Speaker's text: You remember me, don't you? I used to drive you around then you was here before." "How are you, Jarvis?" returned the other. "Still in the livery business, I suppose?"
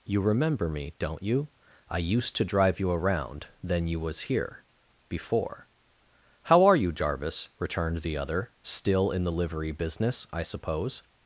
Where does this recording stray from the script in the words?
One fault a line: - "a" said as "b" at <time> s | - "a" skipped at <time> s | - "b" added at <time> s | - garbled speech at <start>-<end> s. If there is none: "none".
none